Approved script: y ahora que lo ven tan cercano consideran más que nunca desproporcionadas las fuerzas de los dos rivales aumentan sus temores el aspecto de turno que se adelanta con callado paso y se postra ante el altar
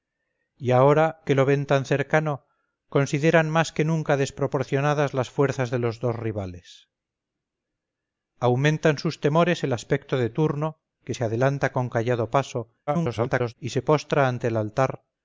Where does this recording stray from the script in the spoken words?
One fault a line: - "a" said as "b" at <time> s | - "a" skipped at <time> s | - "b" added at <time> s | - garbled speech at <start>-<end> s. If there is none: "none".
- garbled speech at 12.9-13.5 s